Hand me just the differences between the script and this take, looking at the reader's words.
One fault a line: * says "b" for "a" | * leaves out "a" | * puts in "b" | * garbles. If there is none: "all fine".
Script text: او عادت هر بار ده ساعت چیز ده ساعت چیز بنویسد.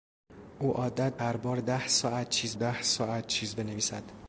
all fine